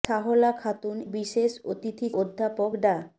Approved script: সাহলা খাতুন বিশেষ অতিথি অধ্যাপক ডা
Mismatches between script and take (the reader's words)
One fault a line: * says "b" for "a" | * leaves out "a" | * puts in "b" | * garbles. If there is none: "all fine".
all fine